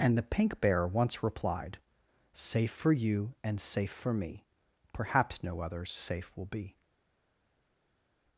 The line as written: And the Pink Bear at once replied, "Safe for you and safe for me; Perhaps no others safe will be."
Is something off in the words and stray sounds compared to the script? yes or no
yes